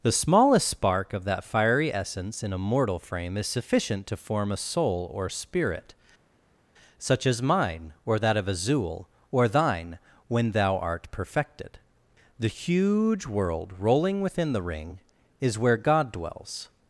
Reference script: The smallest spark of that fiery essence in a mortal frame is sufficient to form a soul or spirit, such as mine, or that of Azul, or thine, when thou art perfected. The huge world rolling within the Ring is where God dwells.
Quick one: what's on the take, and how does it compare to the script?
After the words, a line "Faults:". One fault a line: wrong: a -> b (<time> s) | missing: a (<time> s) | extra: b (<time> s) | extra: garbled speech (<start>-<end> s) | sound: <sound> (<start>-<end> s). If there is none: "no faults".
The smallest spark of that fiery essence in a mortal frame is sufficient to form a soul or spirit, such as mine, or that of Azul, or thine, when thou art perfected. The huge world rolling within the Ring is where God dwells.
Faults:
no faults